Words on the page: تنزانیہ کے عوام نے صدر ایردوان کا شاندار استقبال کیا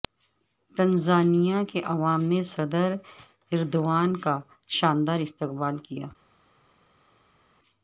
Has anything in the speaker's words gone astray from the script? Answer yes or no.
no